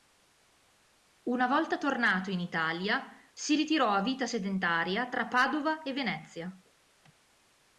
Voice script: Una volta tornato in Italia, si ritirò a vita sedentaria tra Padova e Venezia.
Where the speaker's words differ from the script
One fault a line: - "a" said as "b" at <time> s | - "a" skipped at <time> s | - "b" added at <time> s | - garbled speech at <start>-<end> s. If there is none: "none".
none